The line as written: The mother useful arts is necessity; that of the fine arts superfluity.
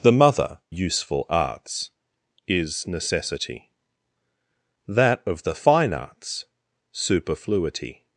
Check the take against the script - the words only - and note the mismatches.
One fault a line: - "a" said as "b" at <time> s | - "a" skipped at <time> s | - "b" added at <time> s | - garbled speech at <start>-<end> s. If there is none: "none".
none